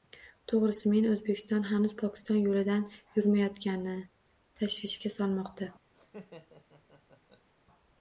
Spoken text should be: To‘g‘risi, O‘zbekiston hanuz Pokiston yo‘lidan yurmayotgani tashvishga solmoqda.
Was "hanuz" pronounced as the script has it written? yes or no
yes